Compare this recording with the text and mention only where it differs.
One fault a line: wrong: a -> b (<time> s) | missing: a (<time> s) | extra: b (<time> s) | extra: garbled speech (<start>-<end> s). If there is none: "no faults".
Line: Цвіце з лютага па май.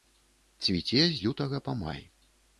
no faults